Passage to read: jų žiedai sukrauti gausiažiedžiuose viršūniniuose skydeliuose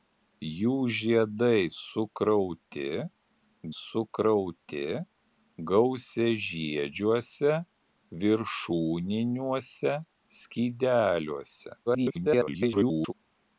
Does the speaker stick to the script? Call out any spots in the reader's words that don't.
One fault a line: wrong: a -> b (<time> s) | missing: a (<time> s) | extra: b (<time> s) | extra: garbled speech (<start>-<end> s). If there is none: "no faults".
extra: sukrauti (3.7 s)
extra: garbled speech (11.9-13.1 s)